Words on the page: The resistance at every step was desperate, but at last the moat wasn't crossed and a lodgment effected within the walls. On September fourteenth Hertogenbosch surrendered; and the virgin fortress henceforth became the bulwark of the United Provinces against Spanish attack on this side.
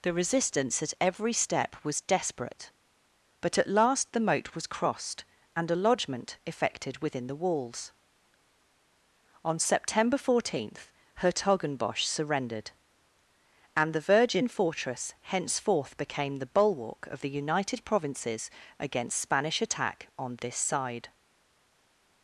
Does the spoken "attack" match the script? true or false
true